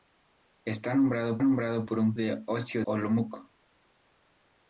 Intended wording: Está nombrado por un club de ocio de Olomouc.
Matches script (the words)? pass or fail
fail